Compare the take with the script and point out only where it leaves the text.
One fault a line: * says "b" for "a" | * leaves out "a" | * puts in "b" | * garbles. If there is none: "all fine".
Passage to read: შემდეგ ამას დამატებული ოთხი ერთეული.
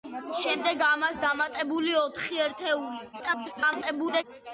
* garbles